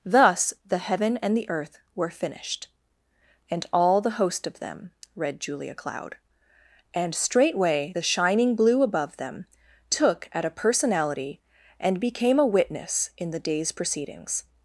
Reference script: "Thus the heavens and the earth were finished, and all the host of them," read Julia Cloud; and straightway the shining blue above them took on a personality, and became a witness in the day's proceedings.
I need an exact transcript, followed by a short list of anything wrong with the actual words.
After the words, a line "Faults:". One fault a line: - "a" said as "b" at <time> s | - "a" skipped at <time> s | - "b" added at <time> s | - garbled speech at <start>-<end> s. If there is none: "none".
"Thus the heaven and the earth were finished, and all the host of them," read Julia Cloud; and straightway the shining blue above them took at a personality, and became a witness in the day's proceedings.
Faults:
- "heavens" said as "heaven" at 0.8 s
- "on" said as "at" at 10.3 s